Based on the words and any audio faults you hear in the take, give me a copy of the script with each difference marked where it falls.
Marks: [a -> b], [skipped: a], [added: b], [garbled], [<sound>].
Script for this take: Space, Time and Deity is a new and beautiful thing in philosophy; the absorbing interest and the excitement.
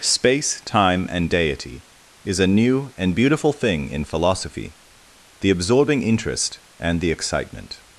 Space, Time and Deity is a new and beautiful thing in philosophy; the absorbing interest and the excitement.